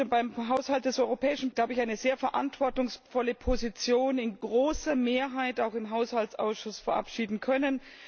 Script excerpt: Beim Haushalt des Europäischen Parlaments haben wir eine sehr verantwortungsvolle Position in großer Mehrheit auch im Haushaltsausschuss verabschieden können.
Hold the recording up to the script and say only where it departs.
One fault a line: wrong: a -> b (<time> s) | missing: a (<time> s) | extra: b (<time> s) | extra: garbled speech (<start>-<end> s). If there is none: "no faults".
missing: Parlaments haben wir (1.5 s)